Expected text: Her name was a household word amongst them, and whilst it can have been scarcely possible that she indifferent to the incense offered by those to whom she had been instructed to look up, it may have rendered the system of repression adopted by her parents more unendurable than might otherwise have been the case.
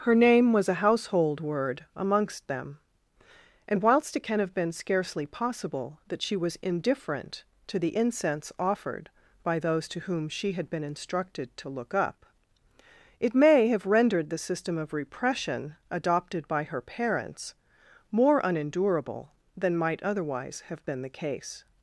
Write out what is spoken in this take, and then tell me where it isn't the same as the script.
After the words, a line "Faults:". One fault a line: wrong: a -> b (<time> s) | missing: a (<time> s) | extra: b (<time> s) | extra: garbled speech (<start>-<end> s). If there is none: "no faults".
Her name was a household word amongst them, and whilst it can have been scarcely possible that she was indifferent to the incense offered by those to whom she had been instructed to look up, it may have rendered the system of repression adopted by her parents more unendurable than might otherwise have been the case.
Faults:
extra: was (6.3 s)